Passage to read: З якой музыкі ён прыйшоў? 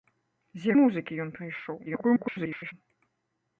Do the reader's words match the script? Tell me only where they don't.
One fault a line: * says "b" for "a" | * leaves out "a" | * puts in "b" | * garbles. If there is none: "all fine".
* leaves out "якой"
* garbles